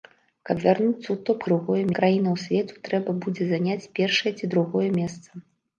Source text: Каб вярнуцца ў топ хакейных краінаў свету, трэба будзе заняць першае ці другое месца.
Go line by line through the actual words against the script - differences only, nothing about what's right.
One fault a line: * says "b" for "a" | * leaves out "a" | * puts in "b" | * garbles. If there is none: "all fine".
* says "другое" for "хакейных"